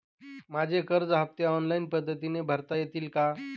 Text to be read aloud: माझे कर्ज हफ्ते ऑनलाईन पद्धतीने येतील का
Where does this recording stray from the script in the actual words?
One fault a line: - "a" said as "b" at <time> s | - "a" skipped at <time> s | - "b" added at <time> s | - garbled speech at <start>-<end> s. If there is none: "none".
- "भरता" added at 2.4 s